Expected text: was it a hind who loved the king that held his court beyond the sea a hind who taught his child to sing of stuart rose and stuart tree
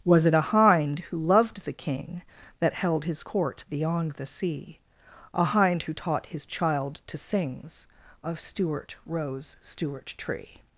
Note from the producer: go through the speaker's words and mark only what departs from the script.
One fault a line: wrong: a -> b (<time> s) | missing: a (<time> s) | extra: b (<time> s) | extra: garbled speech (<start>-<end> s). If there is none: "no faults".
wrong: sing -> sings (7.2 s)
missing: and (9.6 s)